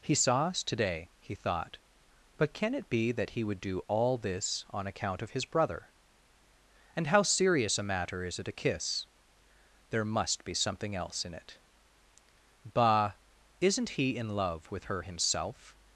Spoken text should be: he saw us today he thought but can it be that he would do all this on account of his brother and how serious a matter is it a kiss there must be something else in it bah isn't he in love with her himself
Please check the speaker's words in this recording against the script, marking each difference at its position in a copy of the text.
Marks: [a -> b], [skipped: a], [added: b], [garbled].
he saw us today he thought but can it be that he would do all this on account of his brother and how serious a matter is it a kiss there must be something else in it bah isn't he in love with her himself